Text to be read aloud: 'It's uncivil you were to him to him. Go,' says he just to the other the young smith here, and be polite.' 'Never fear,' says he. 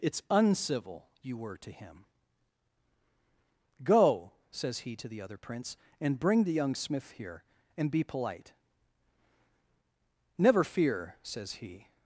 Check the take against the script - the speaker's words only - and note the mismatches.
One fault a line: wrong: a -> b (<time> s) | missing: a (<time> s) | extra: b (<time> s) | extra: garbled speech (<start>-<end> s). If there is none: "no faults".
missing: to him (2.0 s)
missing: just (5.0 s)
extra: prince and bring (5.4 s)